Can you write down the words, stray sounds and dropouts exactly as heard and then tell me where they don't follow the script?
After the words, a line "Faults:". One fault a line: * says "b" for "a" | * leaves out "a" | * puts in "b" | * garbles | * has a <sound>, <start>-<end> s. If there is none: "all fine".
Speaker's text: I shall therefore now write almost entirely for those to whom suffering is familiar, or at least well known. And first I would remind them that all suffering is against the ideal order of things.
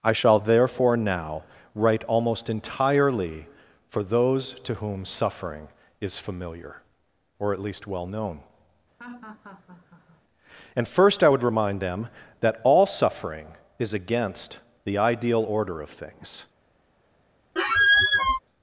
I shall therefore now write almost entirely for those to whom suffering is familiar, or at least well known. And first I would remind them that all suffering is against the ideal order of things.
Faults:
* has a laugh, 9.0-10.2 s
* has a squeak, 17.6-18.4 s